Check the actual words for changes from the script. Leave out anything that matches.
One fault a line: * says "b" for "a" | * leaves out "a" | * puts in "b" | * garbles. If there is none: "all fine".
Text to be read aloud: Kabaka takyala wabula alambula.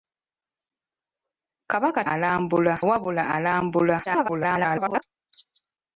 * says "alambula" for "takyala"
* garbles